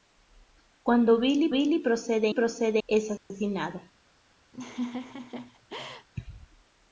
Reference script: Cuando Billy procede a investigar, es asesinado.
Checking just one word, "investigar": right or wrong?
wrong